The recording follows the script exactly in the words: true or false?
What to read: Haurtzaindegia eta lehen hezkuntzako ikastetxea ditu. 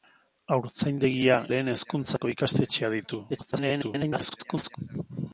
false